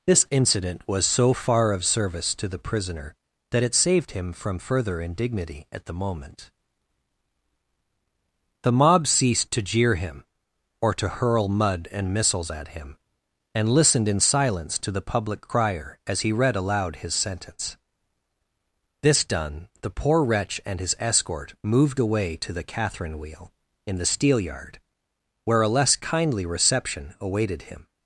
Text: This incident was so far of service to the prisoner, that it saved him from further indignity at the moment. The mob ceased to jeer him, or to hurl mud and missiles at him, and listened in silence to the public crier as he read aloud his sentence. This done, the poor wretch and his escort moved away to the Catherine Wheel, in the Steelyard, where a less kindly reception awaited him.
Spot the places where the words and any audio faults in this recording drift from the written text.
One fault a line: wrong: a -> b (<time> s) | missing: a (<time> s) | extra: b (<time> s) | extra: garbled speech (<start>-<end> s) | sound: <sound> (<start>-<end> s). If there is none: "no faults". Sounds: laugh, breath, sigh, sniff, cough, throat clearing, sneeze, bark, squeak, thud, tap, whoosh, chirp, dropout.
no faults